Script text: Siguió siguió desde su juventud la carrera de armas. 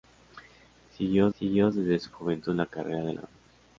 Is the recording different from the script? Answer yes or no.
no